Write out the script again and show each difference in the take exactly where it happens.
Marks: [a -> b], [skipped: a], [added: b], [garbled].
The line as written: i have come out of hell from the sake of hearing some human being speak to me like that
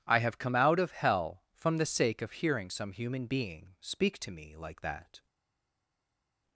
i have come out of hell from the sake of hearing some human being speak to me like that